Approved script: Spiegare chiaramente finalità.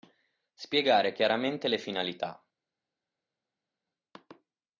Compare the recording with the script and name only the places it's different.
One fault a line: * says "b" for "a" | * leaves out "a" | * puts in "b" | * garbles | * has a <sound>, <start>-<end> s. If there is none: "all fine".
* puts in "le"